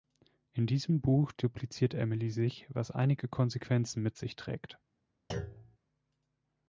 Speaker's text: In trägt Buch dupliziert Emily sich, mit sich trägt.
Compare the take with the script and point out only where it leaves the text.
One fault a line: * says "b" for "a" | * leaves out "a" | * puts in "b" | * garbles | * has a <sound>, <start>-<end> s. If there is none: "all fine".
* says "diesem" for "trägt"
* puts in "was einige Konsequenzen"
* has a thud, 5.3-5.8 s